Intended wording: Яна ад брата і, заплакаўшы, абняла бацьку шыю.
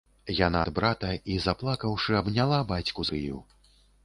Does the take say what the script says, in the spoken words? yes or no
yes